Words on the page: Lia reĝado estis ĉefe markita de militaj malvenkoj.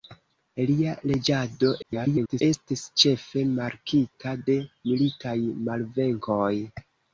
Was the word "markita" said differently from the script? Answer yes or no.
no